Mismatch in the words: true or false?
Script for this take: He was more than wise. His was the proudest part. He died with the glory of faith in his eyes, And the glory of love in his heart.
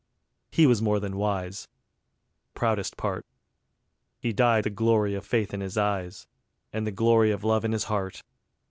true